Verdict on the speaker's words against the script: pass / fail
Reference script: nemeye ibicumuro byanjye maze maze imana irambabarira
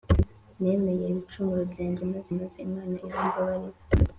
pass